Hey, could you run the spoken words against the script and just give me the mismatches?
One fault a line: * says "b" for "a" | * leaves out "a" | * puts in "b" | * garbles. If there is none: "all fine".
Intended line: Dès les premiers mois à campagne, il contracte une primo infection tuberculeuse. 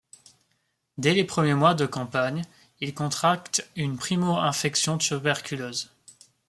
* says "de" for "à"